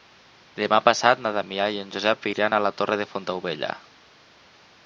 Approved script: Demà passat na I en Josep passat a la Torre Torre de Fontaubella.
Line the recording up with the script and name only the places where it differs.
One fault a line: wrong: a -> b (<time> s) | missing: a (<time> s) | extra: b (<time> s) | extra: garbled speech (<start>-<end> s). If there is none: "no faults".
extra: Damià (1.4 s)
wrong: passat -> iran (2.3 s)
missing: Torre (3.0 s)